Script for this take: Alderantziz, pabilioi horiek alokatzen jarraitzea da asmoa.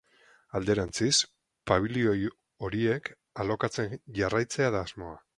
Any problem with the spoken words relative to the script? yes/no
no